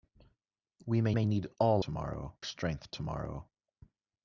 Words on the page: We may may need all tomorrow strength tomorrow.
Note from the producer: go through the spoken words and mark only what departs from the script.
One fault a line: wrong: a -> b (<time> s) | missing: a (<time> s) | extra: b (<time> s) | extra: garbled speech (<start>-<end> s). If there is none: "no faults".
no faults